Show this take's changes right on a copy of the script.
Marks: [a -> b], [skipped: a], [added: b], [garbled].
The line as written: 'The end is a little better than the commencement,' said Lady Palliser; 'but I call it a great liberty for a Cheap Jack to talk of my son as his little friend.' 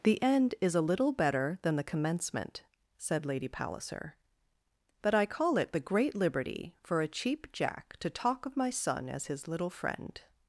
'The end is a little better than the commencement,' said Lady Palliser; 'but I call it [a -> the] great liberty for a Cheap Jack to talk of my son as his little friend.'